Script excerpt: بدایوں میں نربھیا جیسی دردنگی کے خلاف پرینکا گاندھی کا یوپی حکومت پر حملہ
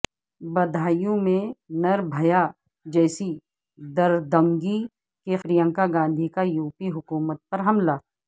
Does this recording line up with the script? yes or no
no